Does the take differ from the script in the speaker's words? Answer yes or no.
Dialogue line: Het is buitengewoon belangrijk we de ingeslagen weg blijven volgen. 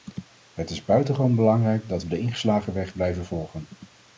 yes